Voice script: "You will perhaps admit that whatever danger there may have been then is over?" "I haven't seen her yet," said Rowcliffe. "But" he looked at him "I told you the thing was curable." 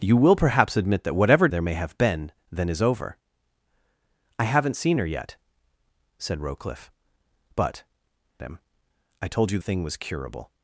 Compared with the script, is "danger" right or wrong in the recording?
wrong